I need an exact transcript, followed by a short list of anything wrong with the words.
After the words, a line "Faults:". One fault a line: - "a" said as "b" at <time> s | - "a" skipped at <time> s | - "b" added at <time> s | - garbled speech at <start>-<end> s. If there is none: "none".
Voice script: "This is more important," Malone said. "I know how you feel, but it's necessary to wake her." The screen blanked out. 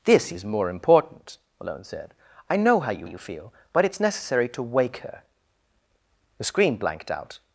"This is more important," Malone said. "I know how you you feel, but it's necessary to wake her." The screen blanked out.
Faults:
- "you" added at 3.0 s